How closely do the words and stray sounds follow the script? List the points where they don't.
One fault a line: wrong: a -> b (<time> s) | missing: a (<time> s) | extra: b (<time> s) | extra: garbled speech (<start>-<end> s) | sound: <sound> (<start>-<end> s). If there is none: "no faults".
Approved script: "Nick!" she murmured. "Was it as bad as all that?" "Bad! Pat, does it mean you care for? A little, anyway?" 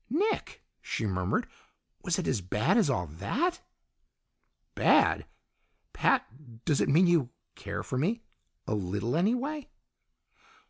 extra: me (8.0 s)